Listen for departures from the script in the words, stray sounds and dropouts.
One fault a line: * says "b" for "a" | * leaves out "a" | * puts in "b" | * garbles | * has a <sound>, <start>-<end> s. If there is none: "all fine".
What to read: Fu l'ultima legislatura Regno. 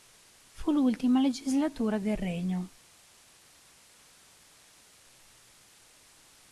* puts in "del"